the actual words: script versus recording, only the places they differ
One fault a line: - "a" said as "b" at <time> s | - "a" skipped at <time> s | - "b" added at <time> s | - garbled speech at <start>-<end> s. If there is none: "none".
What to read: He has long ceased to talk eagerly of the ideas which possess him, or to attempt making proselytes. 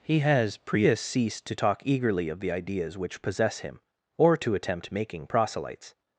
- "long" said as "prius" at 0.6 s